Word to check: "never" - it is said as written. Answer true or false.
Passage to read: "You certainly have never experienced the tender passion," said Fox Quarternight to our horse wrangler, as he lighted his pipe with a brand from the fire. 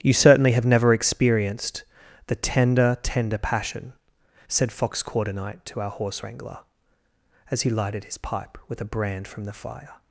true